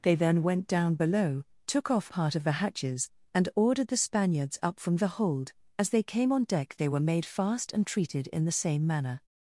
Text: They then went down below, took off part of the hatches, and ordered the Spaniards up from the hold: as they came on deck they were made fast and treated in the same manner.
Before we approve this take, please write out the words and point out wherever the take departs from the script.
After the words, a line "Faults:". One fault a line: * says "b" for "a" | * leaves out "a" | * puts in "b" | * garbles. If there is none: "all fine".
They then went down below, took off part of the hatches, and ordered the Spaniards up from the hold: as they came on deck they were made fast and treated in the same manner.
Faults:
all fine